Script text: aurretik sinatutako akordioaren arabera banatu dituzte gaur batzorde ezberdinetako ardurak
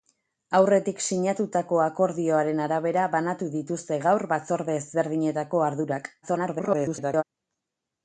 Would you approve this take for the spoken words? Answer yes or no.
no